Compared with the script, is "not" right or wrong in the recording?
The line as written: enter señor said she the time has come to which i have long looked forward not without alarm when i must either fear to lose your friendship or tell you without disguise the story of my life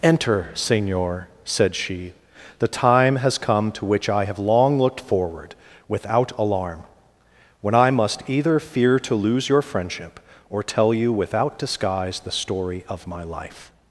wrong